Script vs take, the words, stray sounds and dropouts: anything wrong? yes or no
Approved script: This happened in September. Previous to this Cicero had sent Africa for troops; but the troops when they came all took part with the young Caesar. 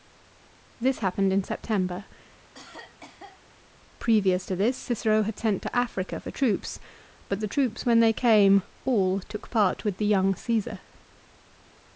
yes